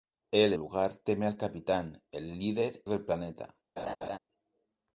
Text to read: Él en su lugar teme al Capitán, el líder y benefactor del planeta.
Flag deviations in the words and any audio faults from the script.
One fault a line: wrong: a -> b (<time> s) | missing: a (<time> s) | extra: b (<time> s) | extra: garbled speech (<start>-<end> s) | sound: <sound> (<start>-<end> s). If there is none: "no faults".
missing: en su (0.5 s)
missing: y benefactor (2.8 s)
sound: laugh (3.8-4.2 s)